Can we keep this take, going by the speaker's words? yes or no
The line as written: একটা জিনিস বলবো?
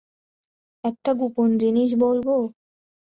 no